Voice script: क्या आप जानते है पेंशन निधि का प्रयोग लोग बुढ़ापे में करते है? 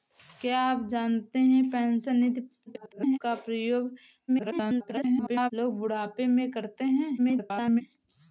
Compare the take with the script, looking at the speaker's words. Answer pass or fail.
fail